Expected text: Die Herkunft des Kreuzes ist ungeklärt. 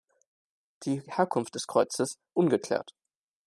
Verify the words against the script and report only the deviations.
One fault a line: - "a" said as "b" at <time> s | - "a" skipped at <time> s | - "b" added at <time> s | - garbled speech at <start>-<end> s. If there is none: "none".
- "ist" skipped at 2.1 s